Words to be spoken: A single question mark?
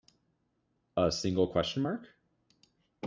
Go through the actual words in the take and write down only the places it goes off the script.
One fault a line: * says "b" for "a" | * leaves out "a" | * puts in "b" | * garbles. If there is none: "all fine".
all fine